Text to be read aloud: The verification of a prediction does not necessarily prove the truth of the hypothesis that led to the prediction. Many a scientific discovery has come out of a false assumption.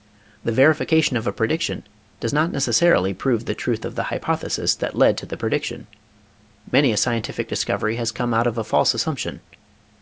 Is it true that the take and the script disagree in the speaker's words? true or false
false